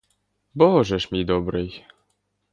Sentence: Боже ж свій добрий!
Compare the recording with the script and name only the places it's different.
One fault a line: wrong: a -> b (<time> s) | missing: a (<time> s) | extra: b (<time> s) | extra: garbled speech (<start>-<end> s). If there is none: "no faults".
wrong: свій -> мій (1.1 s)